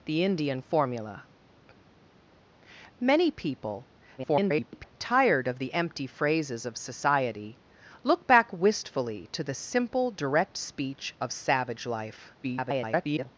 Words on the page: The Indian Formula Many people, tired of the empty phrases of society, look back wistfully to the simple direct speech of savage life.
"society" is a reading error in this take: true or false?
false